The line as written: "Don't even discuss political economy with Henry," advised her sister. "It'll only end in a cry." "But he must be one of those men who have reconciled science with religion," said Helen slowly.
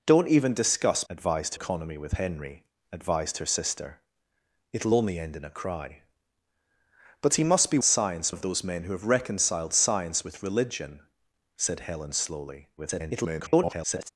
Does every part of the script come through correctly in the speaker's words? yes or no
no